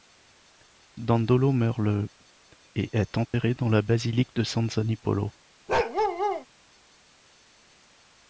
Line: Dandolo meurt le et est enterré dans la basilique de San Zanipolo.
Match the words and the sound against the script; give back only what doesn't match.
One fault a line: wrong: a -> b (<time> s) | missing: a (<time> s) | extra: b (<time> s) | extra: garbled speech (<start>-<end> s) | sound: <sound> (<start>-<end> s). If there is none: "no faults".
sound: dropout (3.3-3.3 s)
sound: bark (5.7-6.5 s)